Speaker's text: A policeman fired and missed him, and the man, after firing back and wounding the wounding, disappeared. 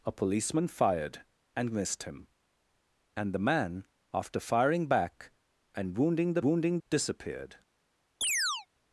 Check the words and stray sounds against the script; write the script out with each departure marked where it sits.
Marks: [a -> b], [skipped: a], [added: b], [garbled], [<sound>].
A policeman fired and missed him, and the man, after firing back and wounding the wounding, disappeared. [chirp]